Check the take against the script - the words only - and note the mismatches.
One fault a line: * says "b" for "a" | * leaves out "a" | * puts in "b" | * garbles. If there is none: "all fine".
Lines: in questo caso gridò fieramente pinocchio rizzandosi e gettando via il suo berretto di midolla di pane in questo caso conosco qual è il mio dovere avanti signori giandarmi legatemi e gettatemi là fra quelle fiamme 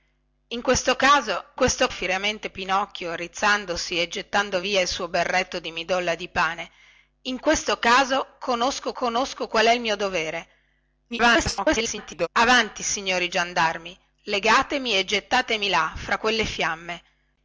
* says "questo" for "gridò"
* puts in "conosco"
* garbles